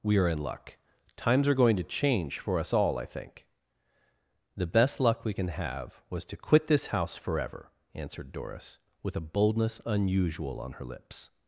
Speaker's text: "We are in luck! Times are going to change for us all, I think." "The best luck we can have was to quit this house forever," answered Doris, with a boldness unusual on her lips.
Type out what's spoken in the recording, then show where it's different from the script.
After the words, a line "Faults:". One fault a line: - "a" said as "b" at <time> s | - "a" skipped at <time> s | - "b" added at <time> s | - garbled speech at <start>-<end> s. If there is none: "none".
"We are in luck! Times are going to change for us all, I think." "The best luck we can have was to quit this house forever," answered Doris, with a boldness unusual on her lips.
Faults:
none